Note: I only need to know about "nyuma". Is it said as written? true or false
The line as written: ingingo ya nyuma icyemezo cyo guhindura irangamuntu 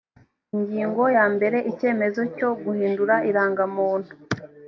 false